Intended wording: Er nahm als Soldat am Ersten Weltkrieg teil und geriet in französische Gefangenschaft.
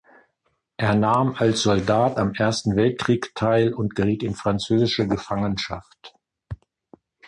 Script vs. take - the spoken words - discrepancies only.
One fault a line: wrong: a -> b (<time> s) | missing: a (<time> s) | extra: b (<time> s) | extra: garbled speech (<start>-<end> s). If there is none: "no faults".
no faults